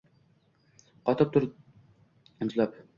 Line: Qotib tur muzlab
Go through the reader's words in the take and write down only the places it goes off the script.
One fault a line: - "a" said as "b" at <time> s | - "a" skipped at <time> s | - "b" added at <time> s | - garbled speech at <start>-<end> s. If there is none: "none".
none